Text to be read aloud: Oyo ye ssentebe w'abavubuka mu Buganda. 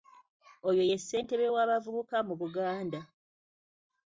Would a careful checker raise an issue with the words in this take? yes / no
no